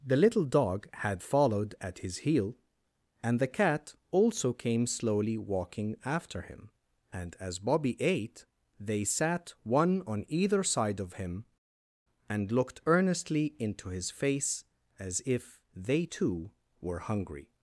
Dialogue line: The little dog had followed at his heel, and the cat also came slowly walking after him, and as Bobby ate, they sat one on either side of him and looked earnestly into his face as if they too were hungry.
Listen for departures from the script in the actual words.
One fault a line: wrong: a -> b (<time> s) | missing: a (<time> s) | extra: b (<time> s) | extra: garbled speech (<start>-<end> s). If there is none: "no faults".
no faults